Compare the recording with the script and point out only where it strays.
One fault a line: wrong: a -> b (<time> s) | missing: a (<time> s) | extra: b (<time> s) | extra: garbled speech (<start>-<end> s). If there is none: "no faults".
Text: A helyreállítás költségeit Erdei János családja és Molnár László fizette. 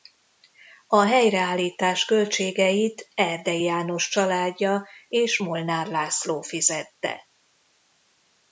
no faults